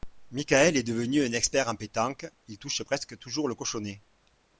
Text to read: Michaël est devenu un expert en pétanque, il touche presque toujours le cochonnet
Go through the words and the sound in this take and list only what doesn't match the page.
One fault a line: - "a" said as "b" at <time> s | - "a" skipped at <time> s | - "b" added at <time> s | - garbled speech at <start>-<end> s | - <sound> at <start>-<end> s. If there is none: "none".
none